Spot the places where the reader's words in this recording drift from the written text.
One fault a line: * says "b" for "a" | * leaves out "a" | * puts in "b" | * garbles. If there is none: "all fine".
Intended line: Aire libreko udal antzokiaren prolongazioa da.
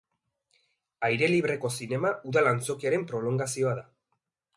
* puts in "zinema"